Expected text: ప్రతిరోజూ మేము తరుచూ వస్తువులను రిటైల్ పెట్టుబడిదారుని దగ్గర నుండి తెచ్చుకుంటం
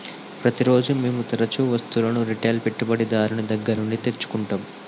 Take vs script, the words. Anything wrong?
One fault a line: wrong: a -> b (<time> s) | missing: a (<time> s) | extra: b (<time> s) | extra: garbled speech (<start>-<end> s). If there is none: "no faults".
no faults